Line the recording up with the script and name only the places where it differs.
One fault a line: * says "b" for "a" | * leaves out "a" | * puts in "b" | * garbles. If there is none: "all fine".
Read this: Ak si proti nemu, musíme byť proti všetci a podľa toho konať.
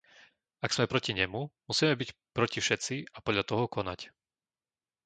* says "sme" for "si"